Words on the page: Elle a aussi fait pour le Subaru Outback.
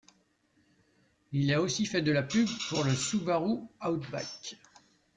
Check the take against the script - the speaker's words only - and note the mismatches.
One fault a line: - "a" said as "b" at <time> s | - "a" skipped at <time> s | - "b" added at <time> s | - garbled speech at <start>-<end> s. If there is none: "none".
- "Elle" said as "Il" at 1.3 s
- "de la pub" added at 2.0 s